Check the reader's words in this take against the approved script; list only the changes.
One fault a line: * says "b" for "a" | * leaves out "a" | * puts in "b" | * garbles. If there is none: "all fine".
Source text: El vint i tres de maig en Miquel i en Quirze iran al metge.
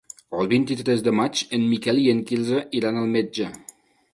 all fine